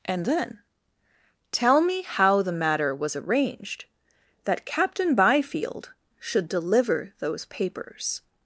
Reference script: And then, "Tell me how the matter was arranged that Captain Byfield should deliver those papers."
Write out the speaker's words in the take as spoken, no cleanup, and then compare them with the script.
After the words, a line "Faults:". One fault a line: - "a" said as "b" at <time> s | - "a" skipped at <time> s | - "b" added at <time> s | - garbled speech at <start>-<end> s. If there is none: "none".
And then, "Tell me how the matter was arranged that Captain Byfield should deliver those papers."
Faults:
none